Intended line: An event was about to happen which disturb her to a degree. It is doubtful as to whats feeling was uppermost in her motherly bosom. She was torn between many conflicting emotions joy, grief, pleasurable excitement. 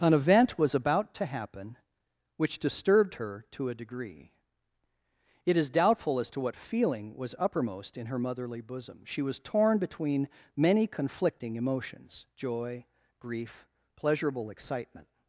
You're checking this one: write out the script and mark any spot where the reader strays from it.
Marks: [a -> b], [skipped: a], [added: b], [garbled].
An event was about to happen which [disturb -> disturbed] her to a degree. It is doubtful as to [whats -> what] feeling was uppermost in her motherly bosom. She was torn between many conflicting emotions joy, grief, pleasurable excitement.